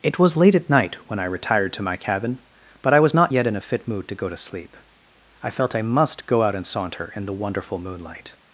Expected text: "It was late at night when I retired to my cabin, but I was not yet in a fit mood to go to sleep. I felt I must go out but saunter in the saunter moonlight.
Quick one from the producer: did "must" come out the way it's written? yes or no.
yes